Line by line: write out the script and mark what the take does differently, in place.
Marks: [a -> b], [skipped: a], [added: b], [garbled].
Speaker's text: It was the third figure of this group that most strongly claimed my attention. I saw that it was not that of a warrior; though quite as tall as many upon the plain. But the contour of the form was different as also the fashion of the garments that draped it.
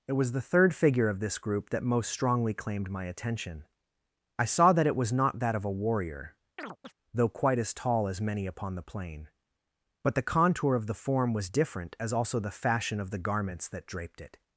It was the third figure of this group that most strongly claimed my attention. I saw that it was not that of a warrior; though quite as tall as many upon the plain. But the contour of the form was different as also the fashion of the garments that draped it.